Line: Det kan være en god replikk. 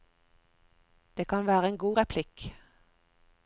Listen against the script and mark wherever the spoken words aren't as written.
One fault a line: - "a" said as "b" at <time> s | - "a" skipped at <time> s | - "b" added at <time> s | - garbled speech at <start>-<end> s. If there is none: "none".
none